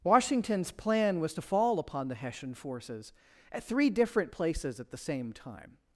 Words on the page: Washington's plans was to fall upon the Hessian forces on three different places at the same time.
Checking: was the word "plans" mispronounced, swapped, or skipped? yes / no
yes